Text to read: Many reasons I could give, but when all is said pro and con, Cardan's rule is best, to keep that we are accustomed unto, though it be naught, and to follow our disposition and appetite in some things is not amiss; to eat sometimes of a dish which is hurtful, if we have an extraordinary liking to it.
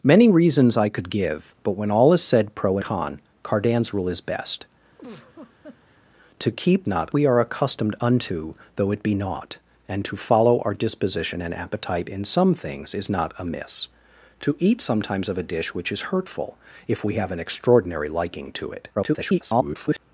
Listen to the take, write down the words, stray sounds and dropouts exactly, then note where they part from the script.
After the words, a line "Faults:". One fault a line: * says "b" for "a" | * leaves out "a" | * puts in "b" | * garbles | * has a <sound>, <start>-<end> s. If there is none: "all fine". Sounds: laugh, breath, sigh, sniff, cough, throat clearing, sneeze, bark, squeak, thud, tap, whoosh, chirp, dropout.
Many reasons I could give, but when all is said pro con, Cardan's rule is best, to keep not we are accustomed unto, though it be naught, and to follow our disposition and appetite in some things is not amiss; to eat sometimes of a dish which is hurtful, if we have an extraordinary liking to it. [garbled]
Faults:
* leaves out "and"
* has a laugh, 5.0-6.0 s
* says "not" for "that"
* garbles